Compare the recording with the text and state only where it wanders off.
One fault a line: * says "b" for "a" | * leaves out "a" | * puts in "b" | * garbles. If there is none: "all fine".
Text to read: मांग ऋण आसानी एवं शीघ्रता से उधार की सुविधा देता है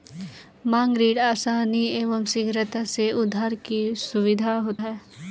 * leaves out "देता"